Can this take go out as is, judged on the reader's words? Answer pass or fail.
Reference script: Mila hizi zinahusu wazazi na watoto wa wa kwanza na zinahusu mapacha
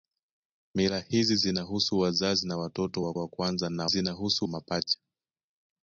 pass